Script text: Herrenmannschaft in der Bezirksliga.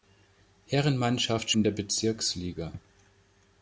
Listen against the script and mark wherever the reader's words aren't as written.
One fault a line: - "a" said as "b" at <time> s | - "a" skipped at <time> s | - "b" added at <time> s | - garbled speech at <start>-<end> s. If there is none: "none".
none